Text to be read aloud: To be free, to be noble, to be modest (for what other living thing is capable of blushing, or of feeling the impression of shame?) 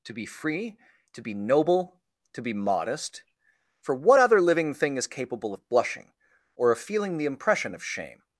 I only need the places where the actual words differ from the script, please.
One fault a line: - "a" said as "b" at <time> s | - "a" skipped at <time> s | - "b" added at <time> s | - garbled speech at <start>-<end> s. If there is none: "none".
none